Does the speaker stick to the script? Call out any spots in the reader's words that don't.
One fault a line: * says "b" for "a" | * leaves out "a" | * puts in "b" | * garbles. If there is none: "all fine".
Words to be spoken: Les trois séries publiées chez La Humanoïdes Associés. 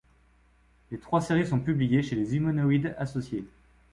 * puts in "sont"
* says "Les" for "La"